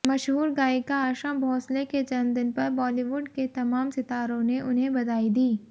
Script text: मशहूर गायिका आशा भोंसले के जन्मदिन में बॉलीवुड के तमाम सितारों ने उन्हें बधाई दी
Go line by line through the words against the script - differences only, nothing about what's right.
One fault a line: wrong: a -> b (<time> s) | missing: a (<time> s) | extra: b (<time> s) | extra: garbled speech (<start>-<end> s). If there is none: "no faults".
wrong: में -> पर (2.5 s)